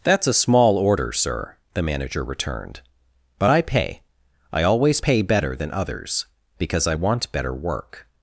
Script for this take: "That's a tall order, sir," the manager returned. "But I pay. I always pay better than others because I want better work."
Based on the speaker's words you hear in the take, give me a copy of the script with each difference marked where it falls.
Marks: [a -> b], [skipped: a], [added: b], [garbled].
"That's a [tall -> small] order, sir," the manager returned. "But I pay. I always pay better than others because I want better work."